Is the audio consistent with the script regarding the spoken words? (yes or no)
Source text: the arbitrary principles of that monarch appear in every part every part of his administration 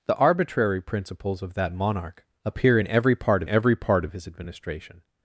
yes